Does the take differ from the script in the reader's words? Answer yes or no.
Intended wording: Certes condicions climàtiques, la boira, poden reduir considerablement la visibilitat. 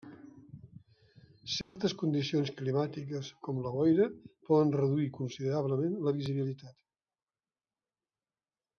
yes